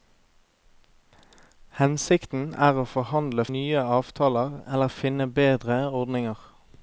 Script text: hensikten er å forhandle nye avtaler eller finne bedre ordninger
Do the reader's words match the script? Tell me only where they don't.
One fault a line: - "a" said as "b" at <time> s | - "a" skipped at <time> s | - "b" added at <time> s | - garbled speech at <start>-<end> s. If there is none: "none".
none